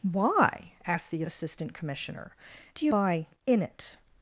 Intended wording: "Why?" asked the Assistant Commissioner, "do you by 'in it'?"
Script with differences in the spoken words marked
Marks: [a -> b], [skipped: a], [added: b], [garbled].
"Why?" asked the Assistant Commissioner, "do you by 'in it'?"